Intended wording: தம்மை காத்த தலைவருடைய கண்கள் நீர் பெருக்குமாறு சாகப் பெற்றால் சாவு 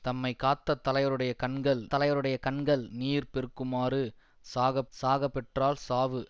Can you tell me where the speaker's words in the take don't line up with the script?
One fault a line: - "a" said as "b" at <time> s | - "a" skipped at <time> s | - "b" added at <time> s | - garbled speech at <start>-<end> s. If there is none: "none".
- "தலைவருடைய கண்கள்" added at 1.9 s
- "சாகப்" added at 4.9 s